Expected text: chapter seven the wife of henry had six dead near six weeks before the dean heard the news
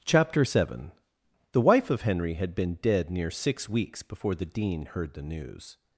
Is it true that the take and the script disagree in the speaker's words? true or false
true